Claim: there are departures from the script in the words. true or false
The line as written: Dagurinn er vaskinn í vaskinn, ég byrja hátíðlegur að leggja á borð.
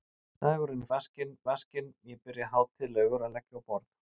false